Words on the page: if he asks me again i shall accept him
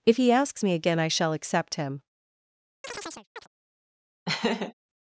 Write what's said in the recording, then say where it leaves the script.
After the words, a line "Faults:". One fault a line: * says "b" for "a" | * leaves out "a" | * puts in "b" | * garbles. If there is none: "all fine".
if he asks me again i shall accept him
Faults:
all fine